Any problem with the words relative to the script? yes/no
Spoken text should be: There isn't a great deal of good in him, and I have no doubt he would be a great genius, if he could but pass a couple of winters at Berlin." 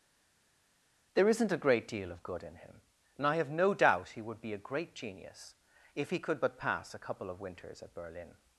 no